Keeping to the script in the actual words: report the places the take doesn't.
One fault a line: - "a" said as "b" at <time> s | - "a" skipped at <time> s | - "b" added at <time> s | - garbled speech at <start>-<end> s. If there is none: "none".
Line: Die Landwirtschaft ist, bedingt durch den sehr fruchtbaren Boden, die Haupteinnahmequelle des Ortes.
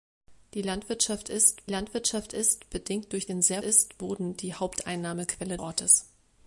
- "Landwirtschaft ist" added at 1.7 s
- "fruchtbaren" said as "ist" at 3.6 s
- "des" skipped at 5.6 s